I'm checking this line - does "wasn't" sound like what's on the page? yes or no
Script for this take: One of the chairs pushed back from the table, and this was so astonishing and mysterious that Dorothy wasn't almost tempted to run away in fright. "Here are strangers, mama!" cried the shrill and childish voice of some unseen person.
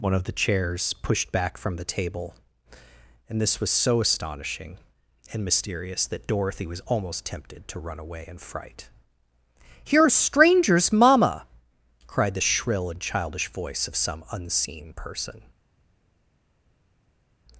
no